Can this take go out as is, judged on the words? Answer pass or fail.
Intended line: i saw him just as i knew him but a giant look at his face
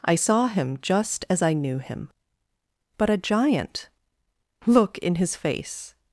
fail